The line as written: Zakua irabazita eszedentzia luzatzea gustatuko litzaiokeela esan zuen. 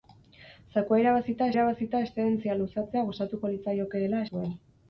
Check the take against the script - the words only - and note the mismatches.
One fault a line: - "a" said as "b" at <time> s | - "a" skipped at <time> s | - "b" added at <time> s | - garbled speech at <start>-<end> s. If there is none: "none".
- "irabazita" added at 1.5 s
- "esan" skipped at 4.2 s